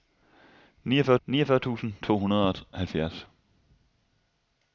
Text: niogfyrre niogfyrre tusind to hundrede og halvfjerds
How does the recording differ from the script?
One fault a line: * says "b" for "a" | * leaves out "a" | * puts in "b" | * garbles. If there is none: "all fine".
all fine